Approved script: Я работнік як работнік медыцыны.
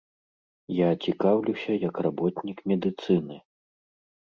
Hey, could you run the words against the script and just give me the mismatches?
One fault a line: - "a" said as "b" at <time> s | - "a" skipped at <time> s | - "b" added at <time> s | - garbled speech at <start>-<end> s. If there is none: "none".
- "работнік" said as "цікаўлюся" at 1.1 s